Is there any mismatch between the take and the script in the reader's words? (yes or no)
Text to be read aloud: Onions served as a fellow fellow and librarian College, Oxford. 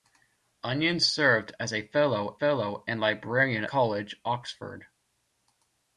no